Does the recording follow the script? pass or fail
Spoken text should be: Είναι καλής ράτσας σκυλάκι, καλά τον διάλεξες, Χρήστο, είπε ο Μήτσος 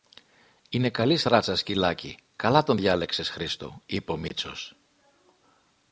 pass